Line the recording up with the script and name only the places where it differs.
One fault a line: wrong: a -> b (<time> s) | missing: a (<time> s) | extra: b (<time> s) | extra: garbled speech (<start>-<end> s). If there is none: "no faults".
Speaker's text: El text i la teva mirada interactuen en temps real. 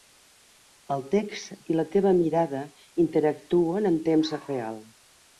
no faults